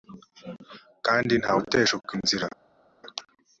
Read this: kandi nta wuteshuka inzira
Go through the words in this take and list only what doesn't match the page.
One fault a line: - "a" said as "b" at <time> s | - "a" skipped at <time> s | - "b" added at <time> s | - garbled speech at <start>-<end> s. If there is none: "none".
none